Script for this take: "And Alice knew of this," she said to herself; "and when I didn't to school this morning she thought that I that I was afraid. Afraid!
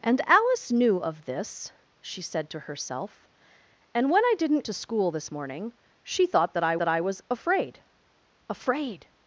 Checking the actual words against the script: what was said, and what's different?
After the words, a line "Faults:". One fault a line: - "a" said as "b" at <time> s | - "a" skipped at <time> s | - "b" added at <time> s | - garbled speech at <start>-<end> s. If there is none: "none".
"And Alice knew of this," she said to herself; "and when I didn't to school this morning she thought that I that I was afraid. Afraid!
Faults:
none